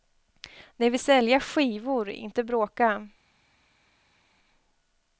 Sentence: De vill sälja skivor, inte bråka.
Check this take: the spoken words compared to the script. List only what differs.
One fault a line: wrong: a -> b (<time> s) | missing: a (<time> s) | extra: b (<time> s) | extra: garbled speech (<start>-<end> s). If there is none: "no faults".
no faults